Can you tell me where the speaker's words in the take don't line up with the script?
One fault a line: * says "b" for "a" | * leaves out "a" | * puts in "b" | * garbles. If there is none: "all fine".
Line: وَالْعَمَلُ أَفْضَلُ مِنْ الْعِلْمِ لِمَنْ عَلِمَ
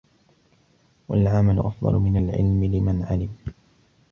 all fine